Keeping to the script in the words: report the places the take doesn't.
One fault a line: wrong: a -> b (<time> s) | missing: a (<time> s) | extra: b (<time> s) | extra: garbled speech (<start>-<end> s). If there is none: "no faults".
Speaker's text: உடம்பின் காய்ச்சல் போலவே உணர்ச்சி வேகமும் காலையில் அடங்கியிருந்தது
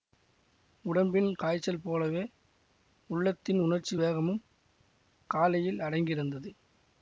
extra: உள்ளத்தின் (3.1 s)